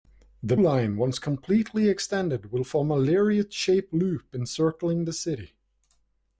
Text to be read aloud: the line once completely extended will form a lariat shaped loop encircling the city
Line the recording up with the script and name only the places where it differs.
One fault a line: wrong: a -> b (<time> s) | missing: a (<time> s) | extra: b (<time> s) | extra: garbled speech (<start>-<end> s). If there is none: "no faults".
no faults